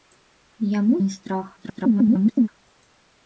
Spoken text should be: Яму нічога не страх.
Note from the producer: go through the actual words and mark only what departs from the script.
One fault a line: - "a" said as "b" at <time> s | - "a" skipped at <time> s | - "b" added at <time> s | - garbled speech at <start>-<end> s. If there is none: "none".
- "нічога" skipped at 0.9 s
- garbled speech at 1.6-2.5 s